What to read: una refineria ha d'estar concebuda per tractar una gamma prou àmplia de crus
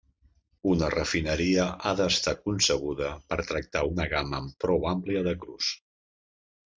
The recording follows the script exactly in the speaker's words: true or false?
true